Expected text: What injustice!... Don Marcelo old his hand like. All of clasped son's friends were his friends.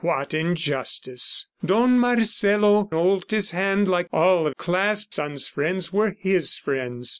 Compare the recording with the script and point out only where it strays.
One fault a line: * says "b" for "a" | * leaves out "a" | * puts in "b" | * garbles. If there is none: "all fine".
all fine